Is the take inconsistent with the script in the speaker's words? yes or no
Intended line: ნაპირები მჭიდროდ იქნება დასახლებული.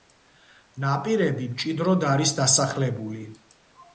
yes